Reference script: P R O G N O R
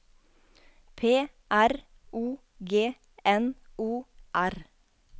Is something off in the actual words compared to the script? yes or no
no